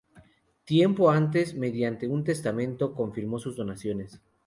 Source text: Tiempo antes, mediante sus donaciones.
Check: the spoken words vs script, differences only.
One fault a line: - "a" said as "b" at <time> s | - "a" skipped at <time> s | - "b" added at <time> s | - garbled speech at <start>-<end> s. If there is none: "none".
- "un testamento confirmó" added at 2.0 s